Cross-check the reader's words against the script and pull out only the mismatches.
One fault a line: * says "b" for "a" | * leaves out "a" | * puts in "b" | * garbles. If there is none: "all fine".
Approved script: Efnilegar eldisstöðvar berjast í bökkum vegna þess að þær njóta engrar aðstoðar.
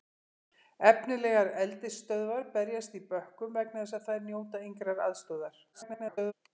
* garbles